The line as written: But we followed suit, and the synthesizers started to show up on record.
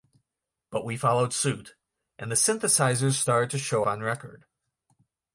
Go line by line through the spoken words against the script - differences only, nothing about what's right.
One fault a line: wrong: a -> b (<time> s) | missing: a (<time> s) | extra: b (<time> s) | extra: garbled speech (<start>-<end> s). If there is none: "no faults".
missing: up (3.8 s)